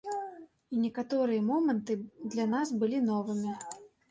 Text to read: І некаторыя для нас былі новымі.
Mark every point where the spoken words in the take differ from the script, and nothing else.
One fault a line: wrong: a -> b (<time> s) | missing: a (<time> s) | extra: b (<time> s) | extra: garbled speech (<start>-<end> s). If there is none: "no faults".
extra: моманты (1.5 s)